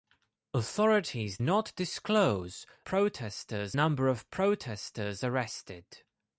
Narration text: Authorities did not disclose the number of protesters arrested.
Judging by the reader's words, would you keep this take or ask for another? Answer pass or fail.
fail